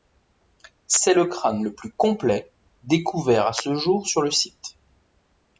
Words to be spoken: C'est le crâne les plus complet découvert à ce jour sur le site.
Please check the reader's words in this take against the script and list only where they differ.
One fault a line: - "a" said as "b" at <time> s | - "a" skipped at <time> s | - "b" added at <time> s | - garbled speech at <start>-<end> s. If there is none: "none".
- "les" said as "le" at 1.6 s